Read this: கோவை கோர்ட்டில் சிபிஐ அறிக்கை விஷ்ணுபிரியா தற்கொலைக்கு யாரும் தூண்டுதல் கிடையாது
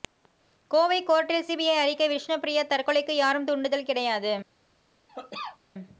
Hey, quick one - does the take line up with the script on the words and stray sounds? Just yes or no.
no